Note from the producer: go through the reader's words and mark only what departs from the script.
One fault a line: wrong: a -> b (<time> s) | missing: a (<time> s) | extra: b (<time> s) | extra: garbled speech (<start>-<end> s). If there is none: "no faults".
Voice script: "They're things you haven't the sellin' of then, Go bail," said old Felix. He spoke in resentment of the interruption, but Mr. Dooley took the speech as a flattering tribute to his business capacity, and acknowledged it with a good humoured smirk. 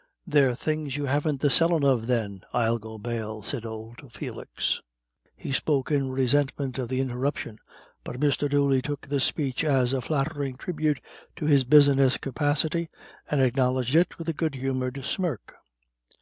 extra: I'll (2.5 s)